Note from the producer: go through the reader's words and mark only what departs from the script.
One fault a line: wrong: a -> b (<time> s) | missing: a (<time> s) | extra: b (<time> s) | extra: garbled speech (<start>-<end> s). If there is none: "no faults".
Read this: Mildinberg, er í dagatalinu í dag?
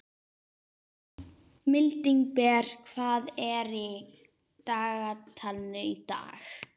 extra: hvað (2.9 s)